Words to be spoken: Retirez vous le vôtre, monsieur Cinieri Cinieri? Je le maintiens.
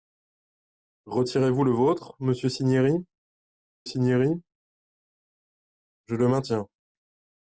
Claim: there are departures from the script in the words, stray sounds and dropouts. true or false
false